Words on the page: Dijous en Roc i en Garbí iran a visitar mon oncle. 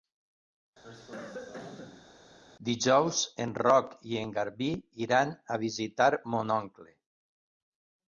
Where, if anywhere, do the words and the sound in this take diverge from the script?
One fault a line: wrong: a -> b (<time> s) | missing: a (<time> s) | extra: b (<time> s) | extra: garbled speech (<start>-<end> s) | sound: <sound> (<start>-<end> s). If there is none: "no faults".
sound: cough (0.8-2.1 s)